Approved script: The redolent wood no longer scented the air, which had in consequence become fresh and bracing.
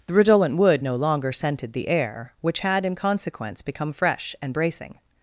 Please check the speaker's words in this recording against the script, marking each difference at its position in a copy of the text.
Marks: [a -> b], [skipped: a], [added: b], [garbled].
The redolent wood no longer scented the air, which had in consequence become fresh and bracing.